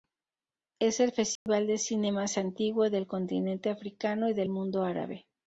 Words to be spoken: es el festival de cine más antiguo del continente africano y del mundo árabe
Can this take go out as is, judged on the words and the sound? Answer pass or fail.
fail